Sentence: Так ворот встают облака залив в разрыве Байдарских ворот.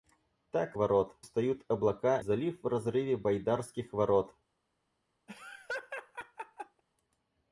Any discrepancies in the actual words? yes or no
no